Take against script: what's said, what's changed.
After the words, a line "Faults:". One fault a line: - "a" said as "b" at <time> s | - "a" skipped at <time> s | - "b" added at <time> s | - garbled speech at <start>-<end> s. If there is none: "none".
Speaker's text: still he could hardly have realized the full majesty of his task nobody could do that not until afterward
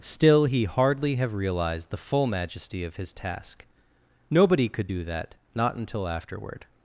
still he hardly have realized the full majesty of his task nobody could do that not until afterward
Faults:
- "could" skipped at 0.6 s